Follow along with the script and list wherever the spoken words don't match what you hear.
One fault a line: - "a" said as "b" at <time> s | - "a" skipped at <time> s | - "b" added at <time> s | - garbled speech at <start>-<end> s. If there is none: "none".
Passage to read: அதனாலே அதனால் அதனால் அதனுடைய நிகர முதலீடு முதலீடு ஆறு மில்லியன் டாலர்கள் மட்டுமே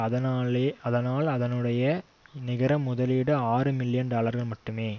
- "அதனால்" skipped at 1.3 s
- "முதலீடு" skipped at 3.3 s